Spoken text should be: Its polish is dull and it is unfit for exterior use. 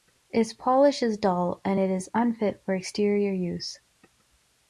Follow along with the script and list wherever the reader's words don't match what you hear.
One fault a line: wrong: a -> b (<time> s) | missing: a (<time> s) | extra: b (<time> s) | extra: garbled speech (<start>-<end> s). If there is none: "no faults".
no faults